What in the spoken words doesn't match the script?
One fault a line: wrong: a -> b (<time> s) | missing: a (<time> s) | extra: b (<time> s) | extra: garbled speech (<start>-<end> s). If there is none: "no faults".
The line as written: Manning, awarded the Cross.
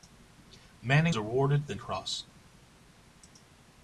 no faults